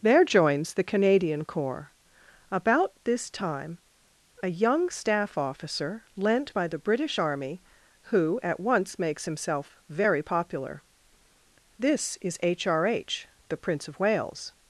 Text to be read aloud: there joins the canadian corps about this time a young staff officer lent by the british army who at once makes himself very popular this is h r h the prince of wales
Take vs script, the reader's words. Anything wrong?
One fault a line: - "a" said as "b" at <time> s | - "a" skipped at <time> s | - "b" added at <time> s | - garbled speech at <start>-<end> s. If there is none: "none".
none